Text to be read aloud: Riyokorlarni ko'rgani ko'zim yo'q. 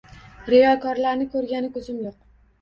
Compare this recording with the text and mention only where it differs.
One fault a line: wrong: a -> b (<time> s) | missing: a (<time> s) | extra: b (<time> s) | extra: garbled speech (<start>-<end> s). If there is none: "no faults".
no faults